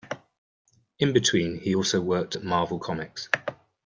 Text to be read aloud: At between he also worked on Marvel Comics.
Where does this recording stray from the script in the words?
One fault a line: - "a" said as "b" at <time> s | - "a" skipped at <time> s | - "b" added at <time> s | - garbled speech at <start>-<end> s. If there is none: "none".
- "At" said as "In" at 1.0 s
- "on" said as "at" at 2.3 s